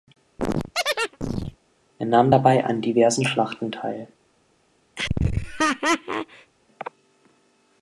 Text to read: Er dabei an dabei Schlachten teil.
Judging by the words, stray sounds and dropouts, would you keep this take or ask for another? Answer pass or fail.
fail